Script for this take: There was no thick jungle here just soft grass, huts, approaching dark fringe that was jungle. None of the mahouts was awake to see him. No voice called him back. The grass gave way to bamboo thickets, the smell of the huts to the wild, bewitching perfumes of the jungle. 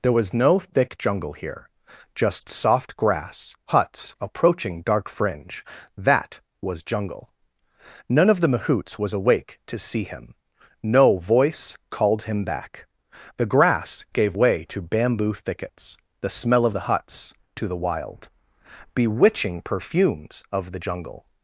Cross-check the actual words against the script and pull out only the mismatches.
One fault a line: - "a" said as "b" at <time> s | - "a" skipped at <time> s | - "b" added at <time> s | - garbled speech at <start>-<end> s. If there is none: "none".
none